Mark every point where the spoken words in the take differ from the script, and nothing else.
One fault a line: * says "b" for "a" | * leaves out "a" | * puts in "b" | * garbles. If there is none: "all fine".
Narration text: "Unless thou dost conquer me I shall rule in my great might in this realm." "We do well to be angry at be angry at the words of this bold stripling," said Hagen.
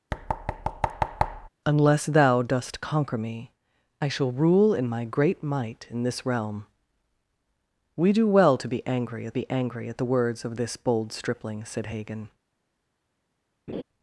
all fine